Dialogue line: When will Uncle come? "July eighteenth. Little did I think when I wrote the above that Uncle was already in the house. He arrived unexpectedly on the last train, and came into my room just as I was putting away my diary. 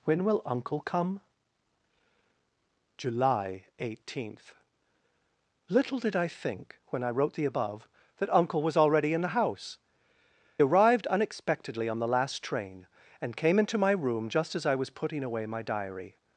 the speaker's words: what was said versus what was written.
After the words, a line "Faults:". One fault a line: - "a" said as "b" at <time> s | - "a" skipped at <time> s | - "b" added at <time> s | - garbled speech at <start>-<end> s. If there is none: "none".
When will Uncle come? "July eighteenth. Little did I think when I wrote the above that Uncle was already in the house. Arrived unexpectedly on the last train, and came into my room just as I was putting away my diary.
Faults:
- "He" skipped at 9.8 s